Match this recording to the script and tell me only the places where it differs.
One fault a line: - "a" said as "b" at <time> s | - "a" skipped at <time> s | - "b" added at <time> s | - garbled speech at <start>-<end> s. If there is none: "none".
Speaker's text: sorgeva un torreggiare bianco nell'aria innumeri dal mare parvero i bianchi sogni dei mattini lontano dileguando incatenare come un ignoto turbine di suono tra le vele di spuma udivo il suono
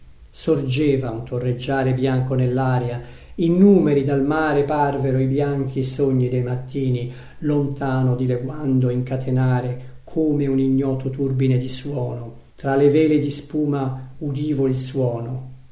none